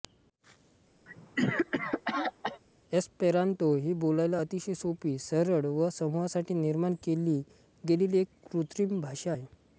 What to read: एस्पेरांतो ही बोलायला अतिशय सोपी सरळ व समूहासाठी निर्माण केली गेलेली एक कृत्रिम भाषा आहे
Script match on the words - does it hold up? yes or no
yes